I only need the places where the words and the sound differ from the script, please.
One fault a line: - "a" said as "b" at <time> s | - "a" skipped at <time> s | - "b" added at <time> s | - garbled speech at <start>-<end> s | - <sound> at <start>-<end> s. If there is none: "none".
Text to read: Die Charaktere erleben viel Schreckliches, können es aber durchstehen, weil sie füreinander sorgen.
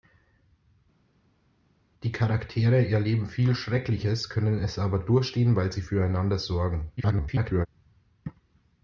- garbled speech at 7.0-7.7 s